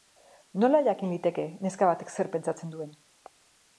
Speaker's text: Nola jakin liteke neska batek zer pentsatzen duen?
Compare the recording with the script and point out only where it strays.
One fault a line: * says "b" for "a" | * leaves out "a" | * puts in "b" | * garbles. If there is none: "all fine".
all fine